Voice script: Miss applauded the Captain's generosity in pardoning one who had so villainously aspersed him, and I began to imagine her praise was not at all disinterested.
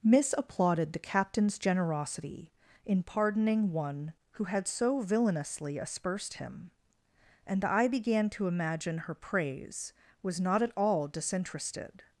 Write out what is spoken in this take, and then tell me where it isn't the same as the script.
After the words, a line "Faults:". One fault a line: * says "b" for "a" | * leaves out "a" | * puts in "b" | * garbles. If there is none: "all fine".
Miss applauded the Captain's generosity in pardoning one who had so villainously aspersed him, and I began to imagine her praise was not at all disinterested.
Faults:
all fine